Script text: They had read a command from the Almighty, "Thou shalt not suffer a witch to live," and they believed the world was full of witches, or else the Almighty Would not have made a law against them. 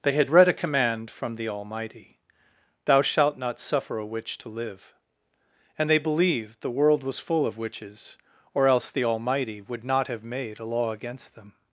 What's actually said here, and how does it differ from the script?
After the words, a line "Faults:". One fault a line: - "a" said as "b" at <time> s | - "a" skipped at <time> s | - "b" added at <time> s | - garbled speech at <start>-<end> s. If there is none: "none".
They had read a command from the Almighty, "Thou shalt not suffer a witch to live," and they believed the world was full of witches, or else the Almighty Would not have made a law against them.
Faults:
none